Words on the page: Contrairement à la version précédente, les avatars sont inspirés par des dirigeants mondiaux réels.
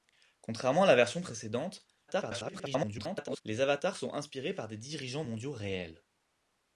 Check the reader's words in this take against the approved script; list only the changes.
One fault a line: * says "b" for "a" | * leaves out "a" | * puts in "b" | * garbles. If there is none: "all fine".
* garbles